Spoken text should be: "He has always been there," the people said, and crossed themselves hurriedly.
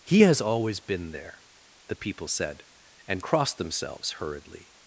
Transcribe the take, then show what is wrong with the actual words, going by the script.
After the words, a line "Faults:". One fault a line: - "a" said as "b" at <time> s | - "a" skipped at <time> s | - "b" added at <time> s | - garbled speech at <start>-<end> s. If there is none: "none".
"He has always been there," the people said, and crossed themselves hurriedly.
Faults:
none